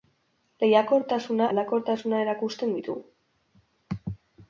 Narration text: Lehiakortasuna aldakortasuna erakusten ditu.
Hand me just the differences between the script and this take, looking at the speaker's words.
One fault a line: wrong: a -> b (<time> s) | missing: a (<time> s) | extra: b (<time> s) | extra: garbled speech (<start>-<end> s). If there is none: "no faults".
no faults